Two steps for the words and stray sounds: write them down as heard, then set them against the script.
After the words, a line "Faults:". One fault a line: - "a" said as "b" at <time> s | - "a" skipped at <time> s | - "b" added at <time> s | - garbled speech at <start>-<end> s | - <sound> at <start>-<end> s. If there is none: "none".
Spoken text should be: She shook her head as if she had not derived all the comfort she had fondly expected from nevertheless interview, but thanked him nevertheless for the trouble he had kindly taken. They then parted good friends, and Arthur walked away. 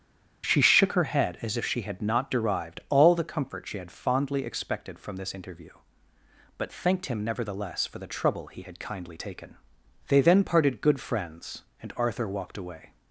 She shook her head as if she had not derived all the comfort she had fondly expected from this interview, but thanked him nevertheless for the trouble he had kindly taken. They then parted good friends, and Arthur walked away.
Faults:
- "nevertheless" said as "this" at 5.2 s